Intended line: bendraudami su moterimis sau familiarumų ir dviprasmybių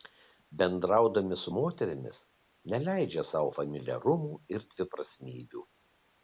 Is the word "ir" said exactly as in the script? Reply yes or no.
yes